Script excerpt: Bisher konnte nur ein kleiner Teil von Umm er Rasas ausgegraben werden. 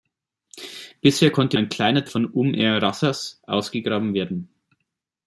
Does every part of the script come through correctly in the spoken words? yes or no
no